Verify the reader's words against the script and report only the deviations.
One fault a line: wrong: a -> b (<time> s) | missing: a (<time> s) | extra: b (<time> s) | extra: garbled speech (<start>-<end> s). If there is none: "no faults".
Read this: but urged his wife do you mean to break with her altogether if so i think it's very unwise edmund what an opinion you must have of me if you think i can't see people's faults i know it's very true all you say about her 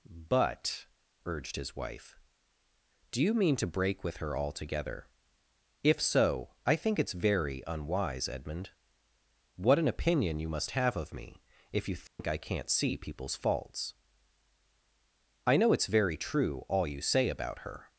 no faults